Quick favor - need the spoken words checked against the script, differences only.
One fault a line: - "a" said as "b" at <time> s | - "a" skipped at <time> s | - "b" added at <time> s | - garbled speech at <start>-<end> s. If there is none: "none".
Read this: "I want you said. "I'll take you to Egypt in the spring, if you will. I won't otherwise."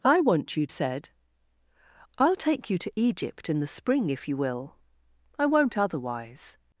none